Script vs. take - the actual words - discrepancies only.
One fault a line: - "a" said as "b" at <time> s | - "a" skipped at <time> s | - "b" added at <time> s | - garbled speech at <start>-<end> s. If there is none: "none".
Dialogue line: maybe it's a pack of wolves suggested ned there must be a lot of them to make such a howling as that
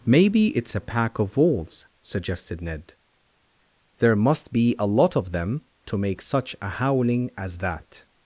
none